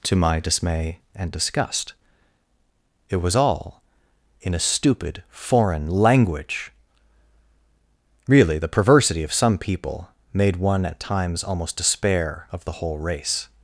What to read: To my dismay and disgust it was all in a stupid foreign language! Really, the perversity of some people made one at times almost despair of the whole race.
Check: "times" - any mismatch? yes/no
no